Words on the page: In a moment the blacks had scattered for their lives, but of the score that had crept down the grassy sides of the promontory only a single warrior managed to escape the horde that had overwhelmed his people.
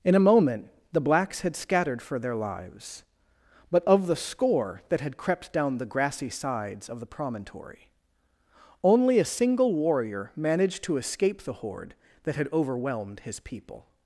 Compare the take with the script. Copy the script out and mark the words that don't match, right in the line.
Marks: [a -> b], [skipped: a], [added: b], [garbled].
In a moment the blacks had scattered for their lives, but of the score that had crept down the grassy sides of the promontory only a single warrior managed to escape the horde that had overwhelmed his people.